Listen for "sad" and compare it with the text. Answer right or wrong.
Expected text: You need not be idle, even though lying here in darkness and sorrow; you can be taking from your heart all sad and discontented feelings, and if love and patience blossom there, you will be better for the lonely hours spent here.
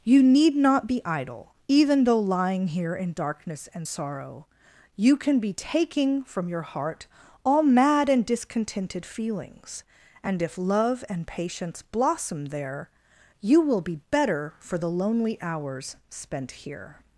wrong